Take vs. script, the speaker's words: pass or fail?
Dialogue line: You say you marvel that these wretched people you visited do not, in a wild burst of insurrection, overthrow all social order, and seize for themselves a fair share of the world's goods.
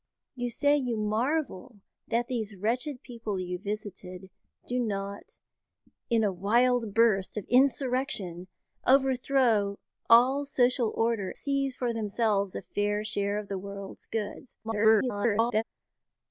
fail